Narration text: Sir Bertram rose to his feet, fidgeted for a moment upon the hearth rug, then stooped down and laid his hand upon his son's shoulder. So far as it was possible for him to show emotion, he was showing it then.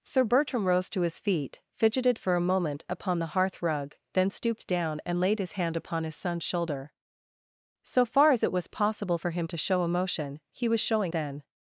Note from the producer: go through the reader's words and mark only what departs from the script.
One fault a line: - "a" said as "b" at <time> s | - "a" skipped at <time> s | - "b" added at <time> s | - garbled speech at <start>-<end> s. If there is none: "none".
- "it" skipped at 11.1 s